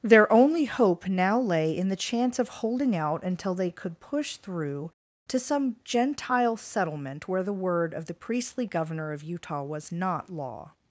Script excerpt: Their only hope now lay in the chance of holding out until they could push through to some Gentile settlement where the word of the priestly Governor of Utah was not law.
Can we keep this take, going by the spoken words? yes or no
yes